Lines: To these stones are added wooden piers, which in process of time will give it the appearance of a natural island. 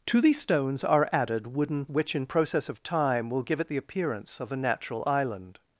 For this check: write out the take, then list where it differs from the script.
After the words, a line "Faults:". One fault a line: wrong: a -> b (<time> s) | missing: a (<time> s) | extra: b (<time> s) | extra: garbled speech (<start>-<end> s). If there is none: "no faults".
To these stones are added wooden which in process of time will give it the appearance of a natural island.
Faults:
missing: piers (1.9 s)